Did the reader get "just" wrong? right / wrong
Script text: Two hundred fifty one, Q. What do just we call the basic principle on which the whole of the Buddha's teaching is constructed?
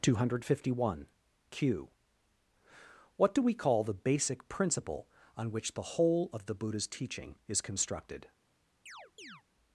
wrong